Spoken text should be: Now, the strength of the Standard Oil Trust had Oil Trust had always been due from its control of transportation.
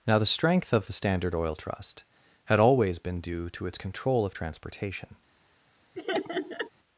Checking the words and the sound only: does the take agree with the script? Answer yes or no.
no